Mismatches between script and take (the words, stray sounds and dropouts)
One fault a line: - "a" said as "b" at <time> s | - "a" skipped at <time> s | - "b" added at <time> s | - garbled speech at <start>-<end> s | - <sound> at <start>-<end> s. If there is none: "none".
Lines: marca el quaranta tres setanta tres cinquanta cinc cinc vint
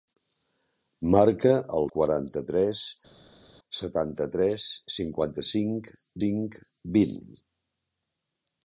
none